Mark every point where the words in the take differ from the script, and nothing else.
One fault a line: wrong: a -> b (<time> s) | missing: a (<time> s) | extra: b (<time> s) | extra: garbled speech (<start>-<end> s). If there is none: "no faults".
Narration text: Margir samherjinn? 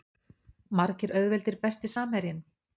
extra: auðveldir Besti (1.2 s)